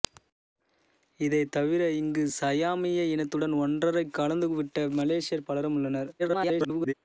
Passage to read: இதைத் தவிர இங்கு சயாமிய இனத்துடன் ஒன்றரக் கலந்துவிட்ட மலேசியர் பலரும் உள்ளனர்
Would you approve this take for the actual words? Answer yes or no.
no